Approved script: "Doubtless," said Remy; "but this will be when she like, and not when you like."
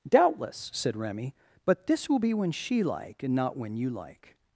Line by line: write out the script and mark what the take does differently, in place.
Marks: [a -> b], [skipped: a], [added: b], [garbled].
"Doubtless," said Remy; "but this will be when she like, and not when you like."